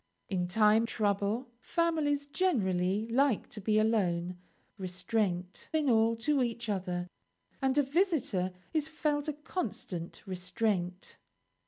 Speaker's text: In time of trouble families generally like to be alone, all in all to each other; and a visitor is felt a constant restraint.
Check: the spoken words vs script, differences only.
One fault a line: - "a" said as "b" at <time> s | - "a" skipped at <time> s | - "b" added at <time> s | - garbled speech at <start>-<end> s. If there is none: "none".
- "of" skipped at 0.9 s
- "all" said as "restraint" at 4.8 s